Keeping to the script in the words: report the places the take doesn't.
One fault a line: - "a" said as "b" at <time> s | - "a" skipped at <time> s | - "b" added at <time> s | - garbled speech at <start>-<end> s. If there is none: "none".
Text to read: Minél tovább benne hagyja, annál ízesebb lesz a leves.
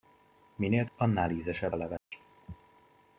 - "tovább benne hagyja" skipped at 0.8 s
- "lesz" skipped at 1.7 s